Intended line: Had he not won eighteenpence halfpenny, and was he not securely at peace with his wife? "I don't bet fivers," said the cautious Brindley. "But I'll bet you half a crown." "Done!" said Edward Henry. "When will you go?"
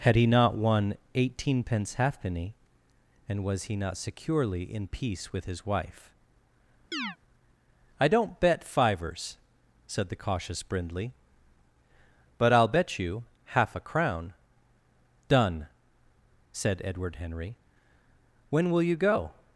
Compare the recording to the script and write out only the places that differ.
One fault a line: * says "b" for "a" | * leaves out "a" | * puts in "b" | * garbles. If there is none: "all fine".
* says "in" for "at"